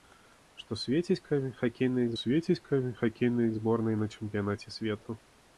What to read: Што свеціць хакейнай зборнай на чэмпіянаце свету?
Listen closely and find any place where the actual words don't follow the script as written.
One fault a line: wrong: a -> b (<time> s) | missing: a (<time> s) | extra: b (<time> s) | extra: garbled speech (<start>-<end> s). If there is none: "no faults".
extra: свеціць хакейнай (2.2 s)